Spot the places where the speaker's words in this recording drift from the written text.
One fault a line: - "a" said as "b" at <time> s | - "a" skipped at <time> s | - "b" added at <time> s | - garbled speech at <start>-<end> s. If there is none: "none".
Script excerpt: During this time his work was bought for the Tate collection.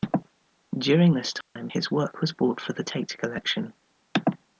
none